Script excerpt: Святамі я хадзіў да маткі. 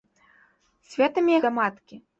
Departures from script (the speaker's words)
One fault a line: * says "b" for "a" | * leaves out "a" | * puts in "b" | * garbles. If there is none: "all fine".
* leaves out "хадзіў"